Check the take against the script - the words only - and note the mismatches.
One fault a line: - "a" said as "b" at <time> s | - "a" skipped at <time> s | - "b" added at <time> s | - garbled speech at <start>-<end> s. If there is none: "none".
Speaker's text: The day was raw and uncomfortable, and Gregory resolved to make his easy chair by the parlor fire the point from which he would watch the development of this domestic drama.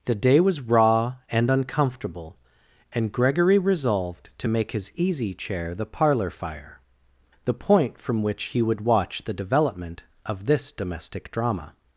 - "by" skipped at 5.7 s